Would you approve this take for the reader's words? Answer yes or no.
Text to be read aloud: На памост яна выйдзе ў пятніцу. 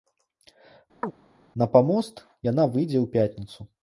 yes